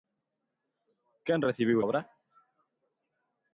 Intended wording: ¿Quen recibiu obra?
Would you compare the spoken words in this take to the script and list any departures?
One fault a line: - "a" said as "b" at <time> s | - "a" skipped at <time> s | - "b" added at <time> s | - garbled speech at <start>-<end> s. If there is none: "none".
none